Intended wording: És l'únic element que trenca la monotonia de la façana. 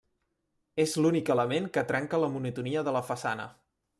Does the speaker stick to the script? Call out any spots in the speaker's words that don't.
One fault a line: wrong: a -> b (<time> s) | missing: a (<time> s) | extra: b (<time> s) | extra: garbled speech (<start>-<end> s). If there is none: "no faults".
no faults